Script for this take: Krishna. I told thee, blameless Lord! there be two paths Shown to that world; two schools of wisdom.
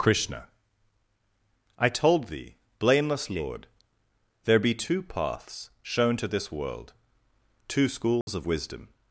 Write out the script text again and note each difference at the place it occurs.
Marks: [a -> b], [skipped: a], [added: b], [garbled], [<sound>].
Krishna. I told thee, blameless Lord! there be two paths Shown to [that -> this] world; two schools [dropout] of wisdom.